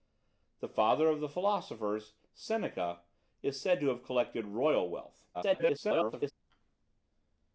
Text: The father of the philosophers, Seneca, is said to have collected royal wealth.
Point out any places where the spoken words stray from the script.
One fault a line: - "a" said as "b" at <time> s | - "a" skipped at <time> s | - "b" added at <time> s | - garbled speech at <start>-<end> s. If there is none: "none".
- garbled speech at 5.3-6.3 s